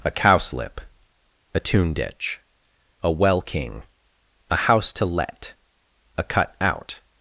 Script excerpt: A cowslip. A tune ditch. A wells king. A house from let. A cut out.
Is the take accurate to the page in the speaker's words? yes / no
no